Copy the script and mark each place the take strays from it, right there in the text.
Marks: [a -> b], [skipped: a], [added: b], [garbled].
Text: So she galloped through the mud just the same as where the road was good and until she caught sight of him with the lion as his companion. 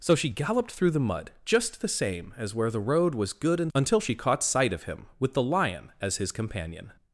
So she galloped through the mud just the same as where the road was good and until she caught sight of him with the lion as his companion.